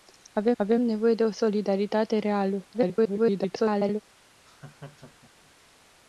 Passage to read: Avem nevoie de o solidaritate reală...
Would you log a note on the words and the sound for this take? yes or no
yes